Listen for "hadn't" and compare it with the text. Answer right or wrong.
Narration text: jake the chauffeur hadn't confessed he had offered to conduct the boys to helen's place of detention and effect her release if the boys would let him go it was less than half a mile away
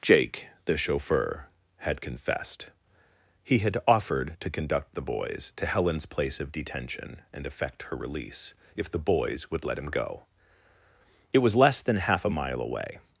wrong